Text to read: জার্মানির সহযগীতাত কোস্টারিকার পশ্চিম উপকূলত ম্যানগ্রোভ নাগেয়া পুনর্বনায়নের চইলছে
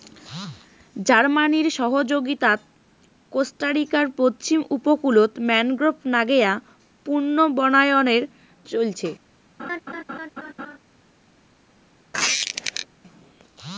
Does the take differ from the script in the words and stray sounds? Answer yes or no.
yes